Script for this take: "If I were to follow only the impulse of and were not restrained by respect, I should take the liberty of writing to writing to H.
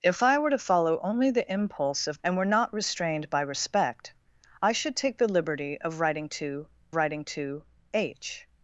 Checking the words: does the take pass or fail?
pass